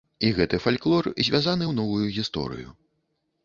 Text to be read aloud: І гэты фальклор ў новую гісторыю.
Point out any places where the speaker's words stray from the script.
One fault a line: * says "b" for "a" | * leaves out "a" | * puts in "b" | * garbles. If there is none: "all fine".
* puts in "звязаны"